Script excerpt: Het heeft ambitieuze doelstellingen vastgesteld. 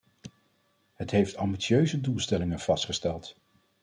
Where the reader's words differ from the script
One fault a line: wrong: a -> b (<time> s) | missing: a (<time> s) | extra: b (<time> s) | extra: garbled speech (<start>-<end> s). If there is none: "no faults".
no faults